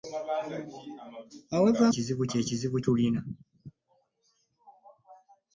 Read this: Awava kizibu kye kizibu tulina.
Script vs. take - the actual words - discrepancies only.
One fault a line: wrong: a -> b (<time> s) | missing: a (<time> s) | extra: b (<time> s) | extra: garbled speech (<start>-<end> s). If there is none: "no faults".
no faults